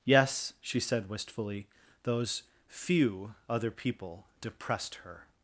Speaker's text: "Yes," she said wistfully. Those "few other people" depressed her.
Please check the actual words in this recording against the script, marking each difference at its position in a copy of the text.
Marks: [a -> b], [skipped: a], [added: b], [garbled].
"Yes," she said wistfully. Those "few other people" depressed her.